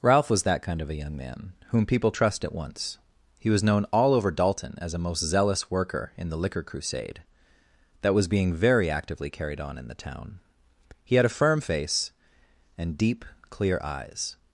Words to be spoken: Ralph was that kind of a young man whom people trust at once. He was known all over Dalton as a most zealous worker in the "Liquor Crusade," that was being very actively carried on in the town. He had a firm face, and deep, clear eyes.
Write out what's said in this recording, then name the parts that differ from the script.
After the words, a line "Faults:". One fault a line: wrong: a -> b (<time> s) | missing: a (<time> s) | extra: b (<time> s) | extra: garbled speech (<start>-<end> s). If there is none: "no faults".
Ralph was that kind of a young man whom people trust at once. He was known all over Dalton as a most zealous worker in the "Liquor Crusade," that was being very actively carried on in the town. He had a firm face, and deep, clear eyes.
Faults:
no faults